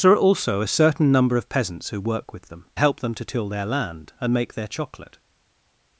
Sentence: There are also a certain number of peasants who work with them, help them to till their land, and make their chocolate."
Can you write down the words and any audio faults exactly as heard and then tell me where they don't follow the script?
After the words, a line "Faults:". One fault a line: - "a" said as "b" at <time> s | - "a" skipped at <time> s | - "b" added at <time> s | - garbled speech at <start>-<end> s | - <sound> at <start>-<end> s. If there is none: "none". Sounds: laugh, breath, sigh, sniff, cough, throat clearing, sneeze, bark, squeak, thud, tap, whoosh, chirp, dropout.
There are also a certain number of peasants who work with them, help them to till their land, and make their chocolate."
Faults:
none